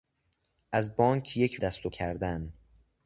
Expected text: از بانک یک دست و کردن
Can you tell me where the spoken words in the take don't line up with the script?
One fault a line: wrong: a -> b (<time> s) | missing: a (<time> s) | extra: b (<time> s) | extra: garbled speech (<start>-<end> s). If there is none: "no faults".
no faults